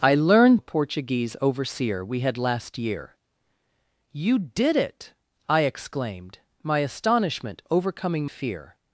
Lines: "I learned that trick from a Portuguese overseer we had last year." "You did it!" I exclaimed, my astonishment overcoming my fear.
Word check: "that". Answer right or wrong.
wrong